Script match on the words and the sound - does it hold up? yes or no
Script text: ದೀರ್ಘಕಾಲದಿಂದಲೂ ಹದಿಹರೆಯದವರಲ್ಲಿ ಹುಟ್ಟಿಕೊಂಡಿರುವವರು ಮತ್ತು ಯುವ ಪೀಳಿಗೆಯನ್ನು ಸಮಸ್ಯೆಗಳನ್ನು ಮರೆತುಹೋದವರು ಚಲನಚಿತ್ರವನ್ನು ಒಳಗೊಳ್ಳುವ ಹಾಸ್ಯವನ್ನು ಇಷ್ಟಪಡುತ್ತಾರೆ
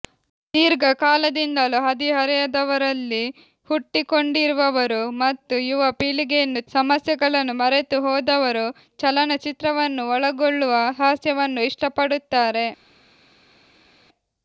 yes